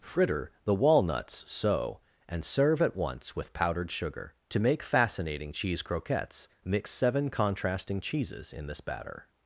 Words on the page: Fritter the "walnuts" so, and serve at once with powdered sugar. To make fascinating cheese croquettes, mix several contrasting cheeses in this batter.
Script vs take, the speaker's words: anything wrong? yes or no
yes